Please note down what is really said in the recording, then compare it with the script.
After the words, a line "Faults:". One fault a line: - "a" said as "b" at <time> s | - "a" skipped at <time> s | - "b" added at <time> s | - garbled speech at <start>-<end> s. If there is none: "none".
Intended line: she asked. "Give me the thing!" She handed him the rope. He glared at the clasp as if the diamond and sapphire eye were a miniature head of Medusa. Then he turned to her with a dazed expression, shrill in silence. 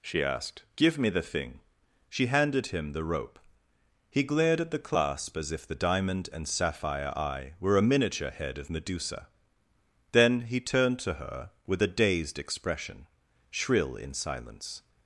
she asked. "Give me the thing!" She handed him the rope. He glared at the clasp as if the diamond and sapphire eye were a miniature head of Medusa. Then he turned to her with a dazed expression, shrill in silence.
Faults:
none